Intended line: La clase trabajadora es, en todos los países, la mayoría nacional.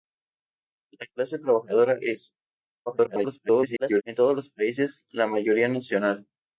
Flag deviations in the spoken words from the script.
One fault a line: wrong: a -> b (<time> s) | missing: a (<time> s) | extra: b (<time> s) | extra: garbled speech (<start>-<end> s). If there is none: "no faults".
extra: garbled speech (2.9-4.0 s)